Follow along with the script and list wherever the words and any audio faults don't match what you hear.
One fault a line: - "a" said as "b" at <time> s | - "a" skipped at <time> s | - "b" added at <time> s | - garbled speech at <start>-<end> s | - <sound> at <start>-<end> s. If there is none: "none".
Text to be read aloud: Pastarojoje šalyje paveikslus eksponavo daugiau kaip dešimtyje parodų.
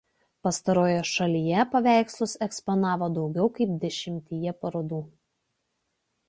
none